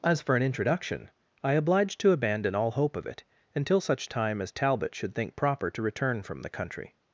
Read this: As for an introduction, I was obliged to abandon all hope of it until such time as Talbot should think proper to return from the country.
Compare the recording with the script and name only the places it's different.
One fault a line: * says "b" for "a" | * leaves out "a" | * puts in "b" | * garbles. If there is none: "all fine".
* leaves out "was"